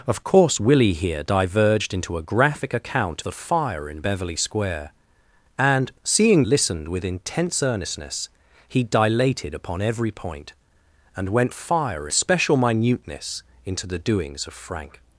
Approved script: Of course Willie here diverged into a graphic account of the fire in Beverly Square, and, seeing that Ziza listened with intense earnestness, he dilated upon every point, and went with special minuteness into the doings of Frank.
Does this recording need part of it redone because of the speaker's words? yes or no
yes